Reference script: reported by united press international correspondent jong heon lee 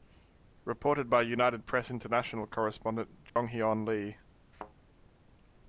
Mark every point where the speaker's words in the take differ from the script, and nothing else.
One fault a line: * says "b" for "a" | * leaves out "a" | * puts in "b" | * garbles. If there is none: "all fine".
all fine